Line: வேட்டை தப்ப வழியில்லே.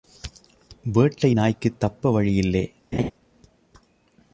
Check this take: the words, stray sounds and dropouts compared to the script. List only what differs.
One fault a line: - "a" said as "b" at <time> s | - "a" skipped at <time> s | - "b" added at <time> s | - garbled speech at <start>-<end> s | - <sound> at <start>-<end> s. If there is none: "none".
- "நாய்க்குத்" added at 1.3 s
- laugh at 2.9-3.1 s